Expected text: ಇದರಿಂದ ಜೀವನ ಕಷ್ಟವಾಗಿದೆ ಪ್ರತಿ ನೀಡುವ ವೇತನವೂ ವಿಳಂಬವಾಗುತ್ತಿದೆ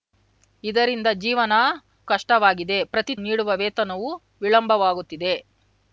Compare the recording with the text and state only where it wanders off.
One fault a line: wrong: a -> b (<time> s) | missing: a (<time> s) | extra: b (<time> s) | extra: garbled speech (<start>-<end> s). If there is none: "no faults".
no faults